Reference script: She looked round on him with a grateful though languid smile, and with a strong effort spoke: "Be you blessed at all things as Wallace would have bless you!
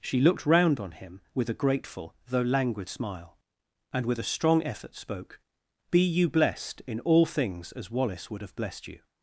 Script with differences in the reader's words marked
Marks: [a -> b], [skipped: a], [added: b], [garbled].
She looked round on him with a grateful though languid smile, and with a strong effort spoke: "Be you blessed [at -> in] all things as Wallace would have [bless -> blessed] you!